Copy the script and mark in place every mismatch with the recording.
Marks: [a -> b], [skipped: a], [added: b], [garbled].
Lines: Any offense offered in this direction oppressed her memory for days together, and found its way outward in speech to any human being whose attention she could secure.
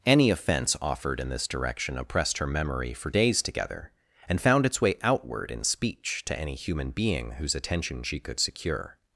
Any offense offered in this direction oppressed her memory for days together, and found its way outward in speech to any human being whose attention she could secure.